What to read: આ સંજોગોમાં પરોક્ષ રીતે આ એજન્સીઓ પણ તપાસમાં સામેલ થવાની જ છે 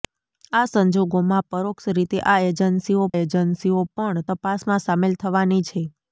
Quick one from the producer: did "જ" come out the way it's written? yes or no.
no